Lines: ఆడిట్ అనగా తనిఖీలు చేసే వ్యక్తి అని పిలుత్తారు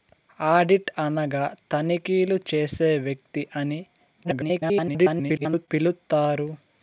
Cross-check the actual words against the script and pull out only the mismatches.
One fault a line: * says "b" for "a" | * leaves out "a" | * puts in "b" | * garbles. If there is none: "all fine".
* garbles